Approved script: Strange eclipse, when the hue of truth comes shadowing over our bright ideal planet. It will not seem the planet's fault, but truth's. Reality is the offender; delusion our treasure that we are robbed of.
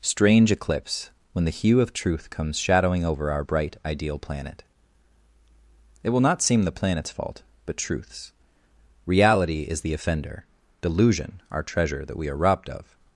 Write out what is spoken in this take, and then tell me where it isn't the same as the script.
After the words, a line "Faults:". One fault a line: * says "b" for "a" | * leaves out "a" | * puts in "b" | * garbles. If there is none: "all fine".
Strange eclipse, when the hue of truth comes shadowing over our bright ideal planet. It will not seem the planet's fault, but truth's. Reality is the offender; delusion our treasure that we are robbed of.
Faults:
all fine